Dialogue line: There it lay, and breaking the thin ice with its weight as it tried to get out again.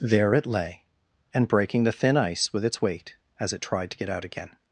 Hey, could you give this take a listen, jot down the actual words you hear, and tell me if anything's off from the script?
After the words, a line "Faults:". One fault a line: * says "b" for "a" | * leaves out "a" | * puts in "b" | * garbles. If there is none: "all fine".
There it lay, and breaking the thin ice with its weight as it tried to get out again.
Faults:
all fine